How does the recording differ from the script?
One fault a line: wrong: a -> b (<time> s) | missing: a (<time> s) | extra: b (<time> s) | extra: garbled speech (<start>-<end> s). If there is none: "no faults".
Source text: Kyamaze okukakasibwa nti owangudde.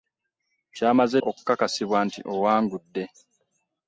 no faults